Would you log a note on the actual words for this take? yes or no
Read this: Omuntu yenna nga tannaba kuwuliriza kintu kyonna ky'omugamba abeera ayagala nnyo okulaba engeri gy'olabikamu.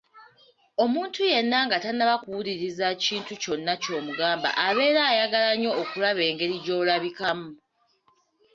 no